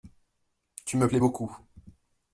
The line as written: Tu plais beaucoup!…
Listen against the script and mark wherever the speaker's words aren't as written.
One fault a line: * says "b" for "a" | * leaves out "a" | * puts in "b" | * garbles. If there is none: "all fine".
* puts in "me"